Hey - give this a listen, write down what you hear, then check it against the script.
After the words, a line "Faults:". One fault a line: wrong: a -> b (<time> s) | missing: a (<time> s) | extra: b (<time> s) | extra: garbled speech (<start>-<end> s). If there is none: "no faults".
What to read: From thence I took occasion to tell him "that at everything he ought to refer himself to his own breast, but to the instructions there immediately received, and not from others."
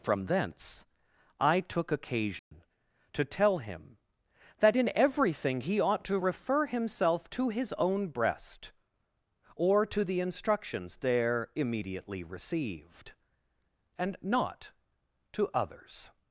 From thence I took occasion to tell him "that in everything he ought to refer himself to his own breast, or to the instructions there immediately received, and not to others."
Faults:
wrong: at -> in (4.8 s)
wrong: but -> or (9.5 s)
wrong: from -> to (15.3 s)